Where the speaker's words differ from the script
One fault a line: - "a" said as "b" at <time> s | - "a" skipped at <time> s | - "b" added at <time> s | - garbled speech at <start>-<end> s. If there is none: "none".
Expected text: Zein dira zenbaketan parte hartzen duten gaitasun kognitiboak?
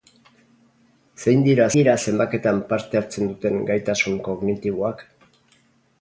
- "dira" added at 1.8 s